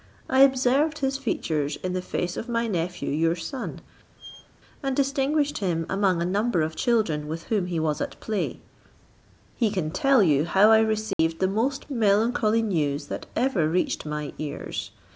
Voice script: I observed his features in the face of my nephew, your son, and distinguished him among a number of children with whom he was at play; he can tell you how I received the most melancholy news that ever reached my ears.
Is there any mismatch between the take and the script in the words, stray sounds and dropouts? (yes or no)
yes